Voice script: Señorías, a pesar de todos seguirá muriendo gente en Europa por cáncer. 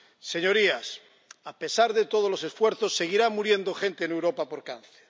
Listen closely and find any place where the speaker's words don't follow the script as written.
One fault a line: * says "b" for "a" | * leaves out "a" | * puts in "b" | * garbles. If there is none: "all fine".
* puts in "los esfuerzos"